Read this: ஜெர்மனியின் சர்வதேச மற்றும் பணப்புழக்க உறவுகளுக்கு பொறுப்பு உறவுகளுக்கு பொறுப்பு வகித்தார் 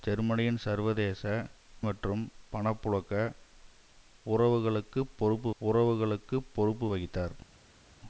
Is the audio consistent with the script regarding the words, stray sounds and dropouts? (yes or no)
yes